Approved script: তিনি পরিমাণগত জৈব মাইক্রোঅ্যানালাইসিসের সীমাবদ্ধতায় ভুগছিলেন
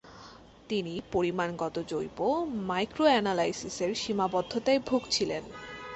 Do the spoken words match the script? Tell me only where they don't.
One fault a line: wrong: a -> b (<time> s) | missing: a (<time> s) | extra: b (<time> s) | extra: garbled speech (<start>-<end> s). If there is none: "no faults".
no faults